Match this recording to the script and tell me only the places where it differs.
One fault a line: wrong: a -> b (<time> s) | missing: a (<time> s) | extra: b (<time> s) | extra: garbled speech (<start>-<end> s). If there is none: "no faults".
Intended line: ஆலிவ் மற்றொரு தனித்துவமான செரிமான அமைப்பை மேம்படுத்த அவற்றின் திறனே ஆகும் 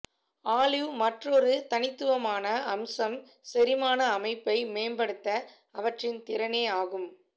extra: அம்சம் (2.7 s)